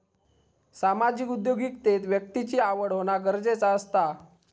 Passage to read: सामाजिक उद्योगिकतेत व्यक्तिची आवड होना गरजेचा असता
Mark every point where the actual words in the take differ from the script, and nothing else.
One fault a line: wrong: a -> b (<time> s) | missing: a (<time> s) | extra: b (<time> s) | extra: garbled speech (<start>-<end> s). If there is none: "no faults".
no faults